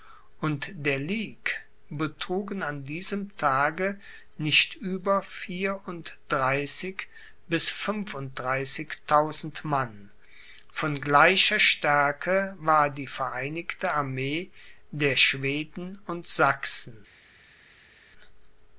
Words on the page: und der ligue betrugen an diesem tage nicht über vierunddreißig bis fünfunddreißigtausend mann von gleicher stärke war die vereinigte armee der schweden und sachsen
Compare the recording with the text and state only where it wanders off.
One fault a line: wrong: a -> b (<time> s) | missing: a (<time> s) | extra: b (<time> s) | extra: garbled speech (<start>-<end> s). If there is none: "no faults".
no faults